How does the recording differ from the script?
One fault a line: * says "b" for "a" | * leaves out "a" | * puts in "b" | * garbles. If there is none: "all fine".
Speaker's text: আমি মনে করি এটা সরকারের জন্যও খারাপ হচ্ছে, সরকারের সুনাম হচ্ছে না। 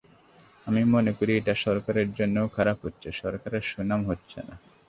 all fine